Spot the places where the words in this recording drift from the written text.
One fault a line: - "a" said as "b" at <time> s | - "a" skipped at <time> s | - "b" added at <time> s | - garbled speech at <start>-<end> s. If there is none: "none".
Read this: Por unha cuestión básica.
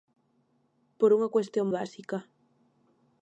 none